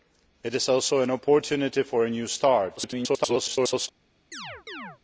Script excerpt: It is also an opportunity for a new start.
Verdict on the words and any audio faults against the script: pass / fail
fail